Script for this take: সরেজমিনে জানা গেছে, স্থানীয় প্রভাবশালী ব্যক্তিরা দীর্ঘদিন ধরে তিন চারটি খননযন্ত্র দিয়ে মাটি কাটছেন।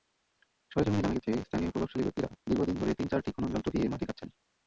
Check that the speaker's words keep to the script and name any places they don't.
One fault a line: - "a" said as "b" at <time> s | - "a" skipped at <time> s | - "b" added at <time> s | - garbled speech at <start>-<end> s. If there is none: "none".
none